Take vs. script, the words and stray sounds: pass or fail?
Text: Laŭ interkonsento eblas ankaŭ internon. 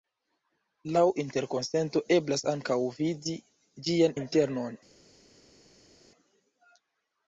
fail